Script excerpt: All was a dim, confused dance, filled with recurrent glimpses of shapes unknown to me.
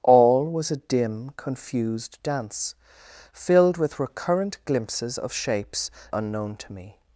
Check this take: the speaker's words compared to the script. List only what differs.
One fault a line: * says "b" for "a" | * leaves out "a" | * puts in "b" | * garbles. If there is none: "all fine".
all fine